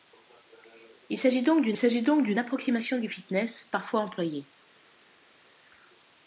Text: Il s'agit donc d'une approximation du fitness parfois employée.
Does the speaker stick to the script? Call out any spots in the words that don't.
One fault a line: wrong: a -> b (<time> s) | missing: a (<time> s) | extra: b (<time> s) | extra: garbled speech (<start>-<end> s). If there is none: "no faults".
extra: s'agit donc d'une (1.8 s)